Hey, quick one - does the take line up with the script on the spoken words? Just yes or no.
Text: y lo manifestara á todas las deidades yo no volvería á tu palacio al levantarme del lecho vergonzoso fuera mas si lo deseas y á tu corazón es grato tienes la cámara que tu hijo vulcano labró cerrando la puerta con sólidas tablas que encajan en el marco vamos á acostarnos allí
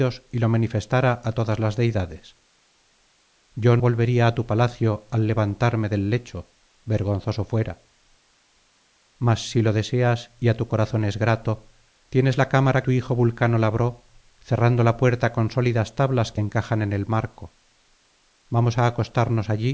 no